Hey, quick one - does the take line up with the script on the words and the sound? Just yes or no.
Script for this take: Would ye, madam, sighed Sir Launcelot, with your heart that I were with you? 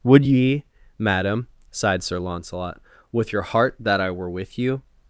yes